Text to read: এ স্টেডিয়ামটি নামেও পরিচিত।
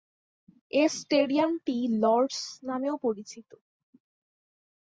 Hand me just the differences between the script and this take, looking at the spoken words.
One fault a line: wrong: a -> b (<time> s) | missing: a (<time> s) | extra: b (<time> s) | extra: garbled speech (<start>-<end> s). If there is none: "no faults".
extra: লর্ড'স (2.0 s)